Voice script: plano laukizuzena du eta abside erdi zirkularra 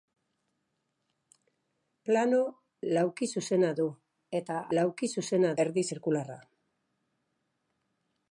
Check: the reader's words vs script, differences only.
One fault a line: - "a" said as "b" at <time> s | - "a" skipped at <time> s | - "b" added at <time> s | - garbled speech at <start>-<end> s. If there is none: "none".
- "abside" said as "laukizuzena" at 4.8 s